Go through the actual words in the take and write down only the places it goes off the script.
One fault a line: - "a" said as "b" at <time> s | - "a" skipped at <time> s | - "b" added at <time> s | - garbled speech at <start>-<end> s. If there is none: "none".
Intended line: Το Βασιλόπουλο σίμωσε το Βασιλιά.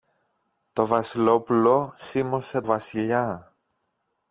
- "το" skipped at 2.6 s